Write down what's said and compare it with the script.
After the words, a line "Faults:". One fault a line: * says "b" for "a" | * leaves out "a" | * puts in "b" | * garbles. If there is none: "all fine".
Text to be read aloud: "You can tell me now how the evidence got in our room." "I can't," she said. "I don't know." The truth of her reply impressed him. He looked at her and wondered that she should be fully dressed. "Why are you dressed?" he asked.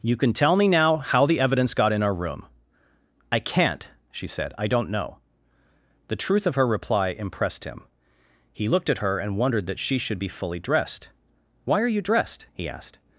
"You can tell me now how the evidence got in our room." "I can't," she said. "I don't know." The truth of her reply impressed him. He looked at her and wondered that she should be fully dressed. "Why are you dressed?" he asked.
Faults:
all fine